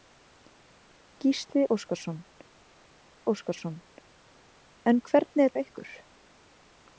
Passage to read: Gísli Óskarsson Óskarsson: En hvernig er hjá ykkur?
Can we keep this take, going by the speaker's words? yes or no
yes